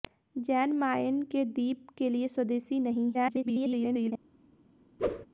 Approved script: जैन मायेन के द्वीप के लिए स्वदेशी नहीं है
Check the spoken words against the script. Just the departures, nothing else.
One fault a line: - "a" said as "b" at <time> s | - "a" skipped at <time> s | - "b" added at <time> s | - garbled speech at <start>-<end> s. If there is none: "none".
- garbled speech at 3.1-4.1 s